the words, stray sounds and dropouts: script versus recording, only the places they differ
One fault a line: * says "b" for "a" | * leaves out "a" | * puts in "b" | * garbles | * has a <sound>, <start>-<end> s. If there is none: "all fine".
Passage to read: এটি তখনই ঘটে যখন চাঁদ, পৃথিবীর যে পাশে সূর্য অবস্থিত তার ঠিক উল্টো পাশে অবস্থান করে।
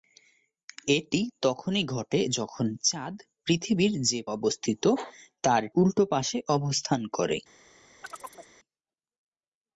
* leaves out "পাশে সূর্য"
* leaves out "ঠিক"
* has a chirp, 8.0-8.5 s